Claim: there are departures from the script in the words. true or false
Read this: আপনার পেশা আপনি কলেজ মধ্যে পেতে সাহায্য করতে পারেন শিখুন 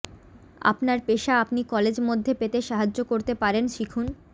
false